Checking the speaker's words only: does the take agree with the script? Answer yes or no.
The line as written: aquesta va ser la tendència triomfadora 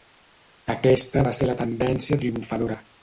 yes